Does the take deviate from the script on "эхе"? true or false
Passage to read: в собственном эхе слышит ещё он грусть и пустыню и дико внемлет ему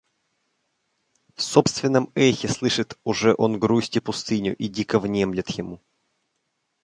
false